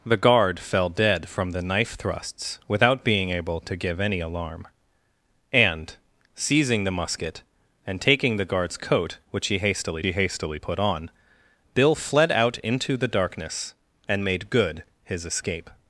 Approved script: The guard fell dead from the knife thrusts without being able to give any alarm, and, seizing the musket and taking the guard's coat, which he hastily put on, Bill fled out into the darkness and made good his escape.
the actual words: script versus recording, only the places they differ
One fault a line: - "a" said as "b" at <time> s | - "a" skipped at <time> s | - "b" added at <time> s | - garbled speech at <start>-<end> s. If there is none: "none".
- "he hastily" added at 10.0 s